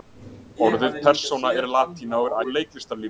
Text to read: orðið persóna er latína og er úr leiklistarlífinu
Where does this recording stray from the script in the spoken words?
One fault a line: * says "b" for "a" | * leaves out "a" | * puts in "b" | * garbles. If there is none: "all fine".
all fine